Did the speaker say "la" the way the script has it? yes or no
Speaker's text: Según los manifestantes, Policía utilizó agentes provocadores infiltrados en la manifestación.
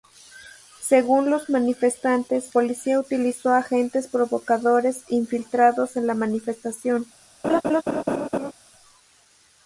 yes